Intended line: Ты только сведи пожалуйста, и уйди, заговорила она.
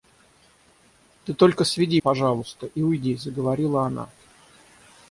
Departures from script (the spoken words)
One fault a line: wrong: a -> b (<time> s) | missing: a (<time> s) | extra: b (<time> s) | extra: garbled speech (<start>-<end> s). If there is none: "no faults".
no faults